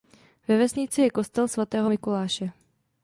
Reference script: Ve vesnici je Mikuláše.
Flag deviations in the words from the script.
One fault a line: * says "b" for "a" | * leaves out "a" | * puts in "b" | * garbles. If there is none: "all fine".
* puts in "kostel svatého"